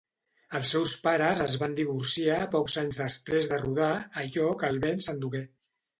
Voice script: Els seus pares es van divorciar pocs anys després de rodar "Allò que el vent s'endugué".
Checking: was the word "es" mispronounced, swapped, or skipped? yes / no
no